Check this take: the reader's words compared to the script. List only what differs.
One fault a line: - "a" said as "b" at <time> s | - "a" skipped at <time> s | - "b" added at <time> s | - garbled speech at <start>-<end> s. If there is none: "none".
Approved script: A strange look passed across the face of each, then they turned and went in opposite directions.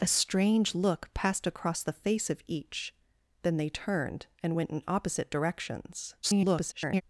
- garbled speech at 6.2-7.0 s